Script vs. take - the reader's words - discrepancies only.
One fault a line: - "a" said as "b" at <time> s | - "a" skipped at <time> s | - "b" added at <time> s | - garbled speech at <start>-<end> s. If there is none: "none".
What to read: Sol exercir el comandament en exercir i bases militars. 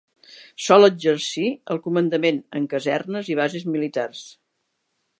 - "exercir" said as "casernes" at 2.8 s